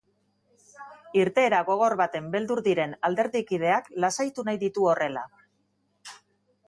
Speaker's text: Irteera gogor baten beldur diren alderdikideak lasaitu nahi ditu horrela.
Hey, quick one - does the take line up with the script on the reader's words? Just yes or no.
yes